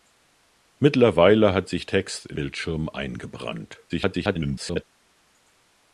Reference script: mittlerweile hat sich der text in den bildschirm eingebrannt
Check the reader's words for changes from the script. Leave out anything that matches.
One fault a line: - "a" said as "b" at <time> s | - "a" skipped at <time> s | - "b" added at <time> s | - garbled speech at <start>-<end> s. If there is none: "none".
- "der" skipped at 1.9 s
- "den" skipped at 2.4 s
- garbled speech at 3.9-4.8 s